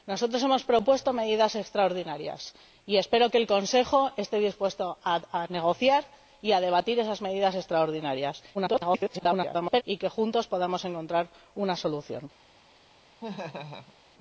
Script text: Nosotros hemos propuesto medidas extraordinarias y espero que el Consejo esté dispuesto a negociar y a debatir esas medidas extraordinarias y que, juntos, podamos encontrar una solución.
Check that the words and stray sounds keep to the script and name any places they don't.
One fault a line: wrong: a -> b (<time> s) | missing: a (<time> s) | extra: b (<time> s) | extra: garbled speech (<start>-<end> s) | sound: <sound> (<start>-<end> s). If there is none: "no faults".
extra: garbled speech (8.5-9.8 s)
sound: laugh (13.2-13.9 s)